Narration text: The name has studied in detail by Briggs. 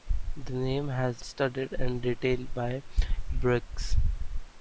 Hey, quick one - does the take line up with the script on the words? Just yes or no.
yes